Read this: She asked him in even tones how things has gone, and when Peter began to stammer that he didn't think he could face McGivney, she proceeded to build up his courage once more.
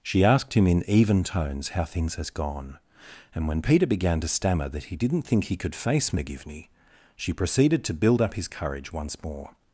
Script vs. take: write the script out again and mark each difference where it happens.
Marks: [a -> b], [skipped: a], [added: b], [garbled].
She asked him in even tones how things has gone, and when Peter began to stammer that he didn't think he could face McGivney, she proceeded to build up his courage once more.